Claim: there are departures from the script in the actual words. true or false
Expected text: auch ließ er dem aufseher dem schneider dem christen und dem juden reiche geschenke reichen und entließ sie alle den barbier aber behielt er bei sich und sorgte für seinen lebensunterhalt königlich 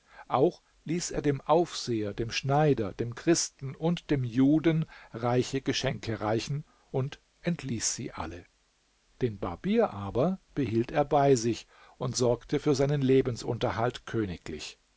false